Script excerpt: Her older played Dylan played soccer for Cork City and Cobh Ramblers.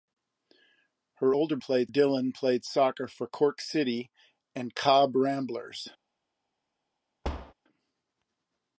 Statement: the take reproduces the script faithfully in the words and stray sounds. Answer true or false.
false